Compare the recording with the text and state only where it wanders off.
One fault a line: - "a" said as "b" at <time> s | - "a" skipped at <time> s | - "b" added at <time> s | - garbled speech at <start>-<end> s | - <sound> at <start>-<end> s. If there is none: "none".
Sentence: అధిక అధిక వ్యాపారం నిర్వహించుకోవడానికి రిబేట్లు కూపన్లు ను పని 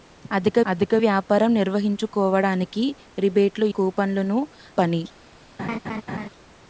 - laugh at 5.6-6.3 s